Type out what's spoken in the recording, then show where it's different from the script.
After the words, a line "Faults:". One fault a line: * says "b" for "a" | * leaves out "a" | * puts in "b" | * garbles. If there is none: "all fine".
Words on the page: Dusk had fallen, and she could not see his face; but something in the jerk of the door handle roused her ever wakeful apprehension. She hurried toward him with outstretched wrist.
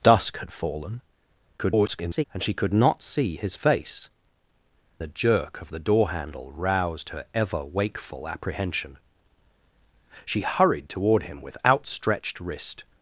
Dusk had fallen, [garbled] and she could not see his face; the jerk of the door handle roused her ever wakeful apprehension. She hurried toward him with outstretched wrist.
Faults:
* garbles
* leaves out "but something in"